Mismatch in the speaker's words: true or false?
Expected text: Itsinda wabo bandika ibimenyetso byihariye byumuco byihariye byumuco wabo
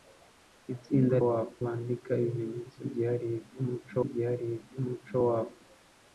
false